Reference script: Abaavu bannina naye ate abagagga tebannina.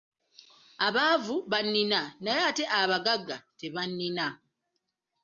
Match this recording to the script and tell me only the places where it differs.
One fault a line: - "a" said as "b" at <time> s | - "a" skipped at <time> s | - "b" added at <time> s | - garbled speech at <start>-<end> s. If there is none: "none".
none